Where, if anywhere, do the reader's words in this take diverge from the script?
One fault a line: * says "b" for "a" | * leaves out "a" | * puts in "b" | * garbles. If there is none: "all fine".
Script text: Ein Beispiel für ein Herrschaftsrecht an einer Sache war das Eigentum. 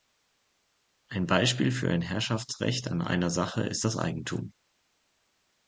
* says "ist" for "war"